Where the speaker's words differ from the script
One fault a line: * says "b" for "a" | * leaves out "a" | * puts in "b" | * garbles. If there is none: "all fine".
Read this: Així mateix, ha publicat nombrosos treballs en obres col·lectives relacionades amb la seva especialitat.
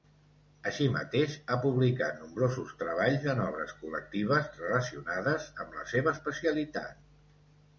all fine